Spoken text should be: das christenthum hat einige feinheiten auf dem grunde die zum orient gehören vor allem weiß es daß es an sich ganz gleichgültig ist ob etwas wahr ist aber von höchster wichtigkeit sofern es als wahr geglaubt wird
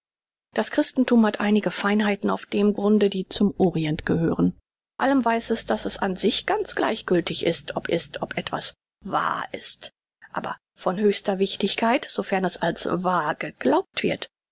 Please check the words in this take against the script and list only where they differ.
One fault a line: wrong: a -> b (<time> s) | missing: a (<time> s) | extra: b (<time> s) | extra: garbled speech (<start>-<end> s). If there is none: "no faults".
missing: vor (4.6 s)
extra: ist ob (7.9 s)